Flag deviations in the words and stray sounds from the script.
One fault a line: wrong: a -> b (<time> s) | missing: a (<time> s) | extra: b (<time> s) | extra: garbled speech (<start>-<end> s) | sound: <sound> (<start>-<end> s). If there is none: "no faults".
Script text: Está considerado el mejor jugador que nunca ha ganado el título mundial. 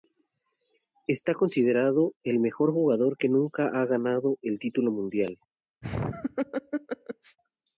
sound: laugh (5.8-7.4 s)